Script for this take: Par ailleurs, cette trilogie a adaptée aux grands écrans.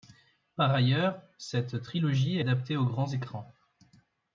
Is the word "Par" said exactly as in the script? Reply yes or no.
yes